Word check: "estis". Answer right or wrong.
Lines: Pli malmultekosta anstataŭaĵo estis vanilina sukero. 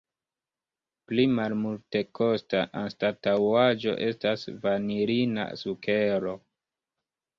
wrong